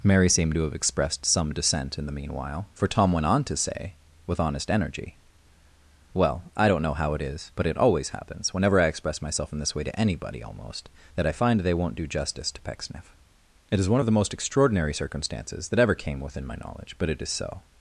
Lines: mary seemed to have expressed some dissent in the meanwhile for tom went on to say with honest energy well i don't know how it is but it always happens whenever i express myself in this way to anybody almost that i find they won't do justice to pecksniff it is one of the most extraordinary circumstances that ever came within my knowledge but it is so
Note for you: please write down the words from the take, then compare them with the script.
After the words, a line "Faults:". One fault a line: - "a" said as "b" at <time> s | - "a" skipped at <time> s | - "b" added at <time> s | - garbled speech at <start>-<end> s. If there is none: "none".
mary seemed to have expressed some dissent in the meanwhile for tom went on to say with honest energy well i don't know how it is but it always happens whenever i express myself in this way to anybody almost that i find they won't do justice to pecksniff it is one of the most extraordinary circumstances that ever came within my knowledge but it is so
Faults:
none